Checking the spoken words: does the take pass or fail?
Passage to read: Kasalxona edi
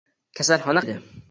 pass